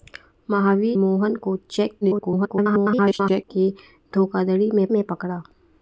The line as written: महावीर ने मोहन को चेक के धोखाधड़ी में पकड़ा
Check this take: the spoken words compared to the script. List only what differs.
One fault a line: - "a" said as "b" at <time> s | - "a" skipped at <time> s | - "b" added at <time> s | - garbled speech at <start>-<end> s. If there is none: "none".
- "ने" skipped at 1.0 s
- garbled speech at 2.0-3.4 s
- "में" added at 4.9 s